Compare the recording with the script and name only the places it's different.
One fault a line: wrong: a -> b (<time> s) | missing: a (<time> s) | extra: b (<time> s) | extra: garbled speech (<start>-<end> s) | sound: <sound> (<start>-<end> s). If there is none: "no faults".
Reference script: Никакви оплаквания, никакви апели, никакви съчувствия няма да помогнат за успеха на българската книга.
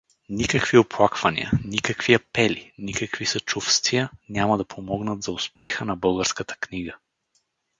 sound: dropout (5.6-5.7 s)